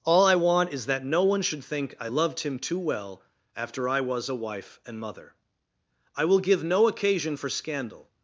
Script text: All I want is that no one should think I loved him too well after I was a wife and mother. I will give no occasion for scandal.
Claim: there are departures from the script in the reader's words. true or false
false